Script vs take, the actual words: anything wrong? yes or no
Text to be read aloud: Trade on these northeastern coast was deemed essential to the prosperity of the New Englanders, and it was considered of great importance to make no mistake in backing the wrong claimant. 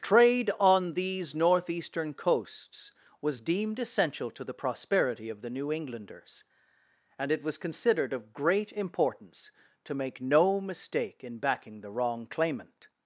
yes